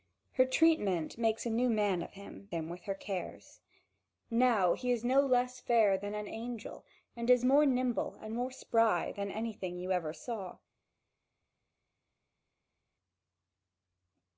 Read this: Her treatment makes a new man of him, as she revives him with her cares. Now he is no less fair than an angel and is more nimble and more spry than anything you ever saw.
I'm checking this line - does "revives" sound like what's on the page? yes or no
no